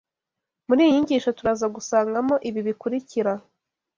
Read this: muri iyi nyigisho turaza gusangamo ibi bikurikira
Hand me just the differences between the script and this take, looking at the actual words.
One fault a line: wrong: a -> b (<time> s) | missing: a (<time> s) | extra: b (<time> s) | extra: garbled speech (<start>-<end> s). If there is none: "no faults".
no faults